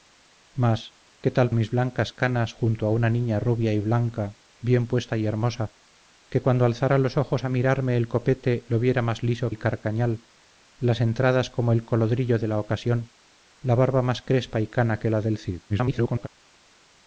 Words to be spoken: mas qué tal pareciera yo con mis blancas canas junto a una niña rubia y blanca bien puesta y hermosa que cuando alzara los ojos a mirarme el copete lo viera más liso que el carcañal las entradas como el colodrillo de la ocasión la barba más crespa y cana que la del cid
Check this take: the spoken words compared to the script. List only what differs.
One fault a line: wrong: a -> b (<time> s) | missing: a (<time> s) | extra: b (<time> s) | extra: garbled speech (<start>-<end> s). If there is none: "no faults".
missing: pareciera yo con (1.5 s)
missing: que (9.5 s)
extra: garbled speech (15.7-16.3 s)